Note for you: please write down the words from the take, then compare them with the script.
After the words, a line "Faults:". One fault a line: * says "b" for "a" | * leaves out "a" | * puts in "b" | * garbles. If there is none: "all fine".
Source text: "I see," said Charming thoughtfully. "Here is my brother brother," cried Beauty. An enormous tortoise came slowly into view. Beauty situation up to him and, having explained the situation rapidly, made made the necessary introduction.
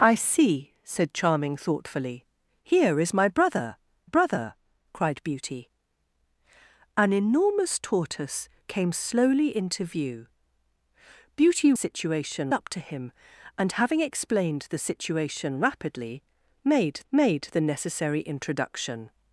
"I see," said Charming thoughtfully. "Here is my brother brother," cried Beauty. An enormous tortoise came slowly into view. Beauty situation up to him and, having explained the situation rapidly, made made the necessary introduction.
Faults:
all fine